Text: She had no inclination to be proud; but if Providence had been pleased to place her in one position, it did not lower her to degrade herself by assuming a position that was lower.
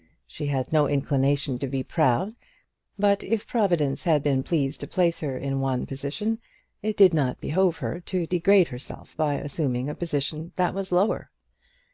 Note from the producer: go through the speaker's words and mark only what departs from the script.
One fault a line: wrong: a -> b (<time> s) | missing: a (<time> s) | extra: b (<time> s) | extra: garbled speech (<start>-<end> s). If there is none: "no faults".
wrong: lower -> behove (7.4 s)